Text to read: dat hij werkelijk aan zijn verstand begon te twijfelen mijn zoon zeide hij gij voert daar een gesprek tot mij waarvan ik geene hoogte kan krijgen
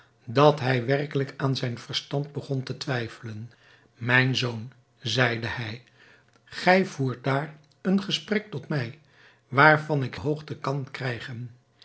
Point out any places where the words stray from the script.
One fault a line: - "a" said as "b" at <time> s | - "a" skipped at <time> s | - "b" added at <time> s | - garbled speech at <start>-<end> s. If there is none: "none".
- "geene" skipped at 10.2 s